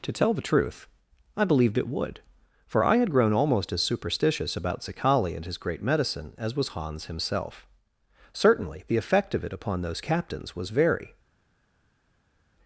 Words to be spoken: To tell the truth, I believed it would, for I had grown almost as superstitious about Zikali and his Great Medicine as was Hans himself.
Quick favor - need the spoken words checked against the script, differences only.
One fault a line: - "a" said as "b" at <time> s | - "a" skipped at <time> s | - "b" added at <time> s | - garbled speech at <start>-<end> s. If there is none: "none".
- "Certainly the effect of it upon those captains was very" added at 8.3 s